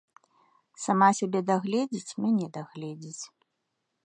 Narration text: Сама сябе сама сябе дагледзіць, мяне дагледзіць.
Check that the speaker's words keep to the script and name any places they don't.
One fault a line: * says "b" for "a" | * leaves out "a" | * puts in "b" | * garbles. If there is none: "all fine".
* leaves out "сама сябе"